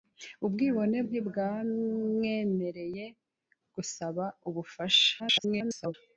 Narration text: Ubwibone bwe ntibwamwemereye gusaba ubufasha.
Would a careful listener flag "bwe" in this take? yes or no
yes